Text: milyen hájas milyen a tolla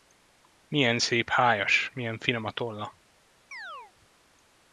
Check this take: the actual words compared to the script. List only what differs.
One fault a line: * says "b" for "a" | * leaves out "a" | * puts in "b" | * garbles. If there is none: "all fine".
* puts in "szép"
* puts in "finom"